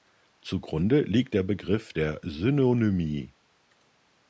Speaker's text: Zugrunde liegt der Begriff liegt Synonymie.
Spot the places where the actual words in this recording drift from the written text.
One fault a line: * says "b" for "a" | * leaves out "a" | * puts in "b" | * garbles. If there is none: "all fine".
* says "der" for "liegt"